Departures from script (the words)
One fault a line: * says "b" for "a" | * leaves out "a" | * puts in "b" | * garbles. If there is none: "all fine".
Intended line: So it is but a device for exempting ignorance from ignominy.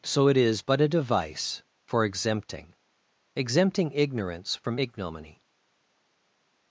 * puts in "exempting"